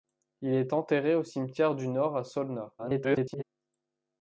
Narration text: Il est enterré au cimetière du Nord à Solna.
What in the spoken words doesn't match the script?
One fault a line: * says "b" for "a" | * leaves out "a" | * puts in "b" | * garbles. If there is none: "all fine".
* garbles